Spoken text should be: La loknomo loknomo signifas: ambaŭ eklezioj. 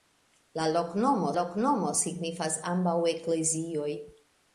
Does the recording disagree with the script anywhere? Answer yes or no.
no